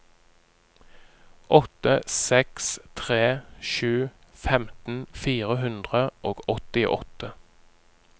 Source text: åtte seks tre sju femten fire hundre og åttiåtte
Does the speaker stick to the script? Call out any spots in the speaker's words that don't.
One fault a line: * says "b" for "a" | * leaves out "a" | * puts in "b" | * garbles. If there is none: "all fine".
all fine